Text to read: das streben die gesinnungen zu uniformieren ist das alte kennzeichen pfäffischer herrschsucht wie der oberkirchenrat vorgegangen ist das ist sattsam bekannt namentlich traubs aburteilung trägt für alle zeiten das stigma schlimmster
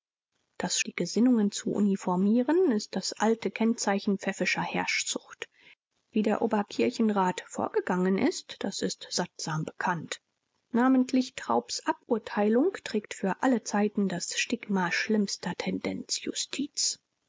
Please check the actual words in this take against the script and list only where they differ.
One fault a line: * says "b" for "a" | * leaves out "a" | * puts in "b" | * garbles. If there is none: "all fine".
* leaves out "streben"